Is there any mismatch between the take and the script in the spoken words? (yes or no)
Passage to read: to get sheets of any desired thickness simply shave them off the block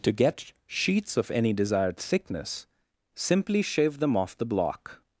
no